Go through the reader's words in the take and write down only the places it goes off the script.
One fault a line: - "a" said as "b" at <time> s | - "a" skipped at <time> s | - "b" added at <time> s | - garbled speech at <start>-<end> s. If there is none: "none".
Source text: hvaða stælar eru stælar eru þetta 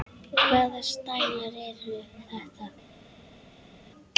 - "stælar eru" skipped at 2.0 s